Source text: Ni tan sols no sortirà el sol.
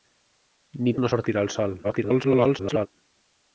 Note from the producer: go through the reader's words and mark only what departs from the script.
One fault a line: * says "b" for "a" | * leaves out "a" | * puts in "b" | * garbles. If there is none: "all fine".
* leaves out "tan sols"
* garbles